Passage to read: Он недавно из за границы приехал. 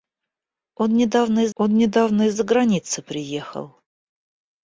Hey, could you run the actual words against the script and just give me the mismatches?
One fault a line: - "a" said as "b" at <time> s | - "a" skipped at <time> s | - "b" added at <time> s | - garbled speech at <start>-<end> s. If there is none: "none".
- "он недавно из" added at 1.5 s